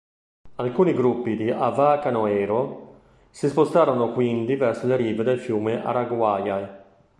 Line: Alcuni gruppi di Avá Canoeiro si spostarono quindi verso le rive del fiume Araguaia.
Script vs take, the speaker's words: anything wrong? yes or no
no